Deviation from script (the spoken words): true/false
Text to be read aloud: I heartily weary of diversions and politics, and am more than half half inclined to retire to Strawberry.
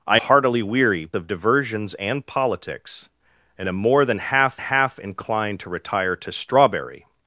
false